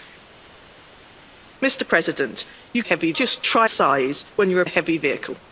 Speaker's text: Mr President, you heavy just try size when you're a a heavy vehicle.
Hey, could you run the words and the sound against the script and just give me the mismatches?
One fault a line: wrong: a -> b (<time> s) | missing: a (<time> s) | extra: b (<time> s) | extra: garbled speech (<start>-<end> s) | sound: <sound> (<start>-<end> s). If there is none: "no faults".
no faults